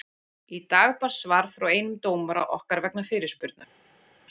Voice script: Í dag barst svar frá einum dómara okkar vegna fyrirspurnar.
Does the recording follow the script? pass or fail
pass